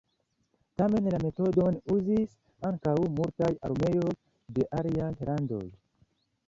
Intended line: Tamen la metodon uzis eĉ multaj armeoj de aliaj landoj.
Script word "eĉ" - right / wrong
wrong